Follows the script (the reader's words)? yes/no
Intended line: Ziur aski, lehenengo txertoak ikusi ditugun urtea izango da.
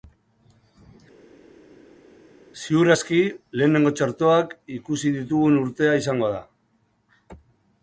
yes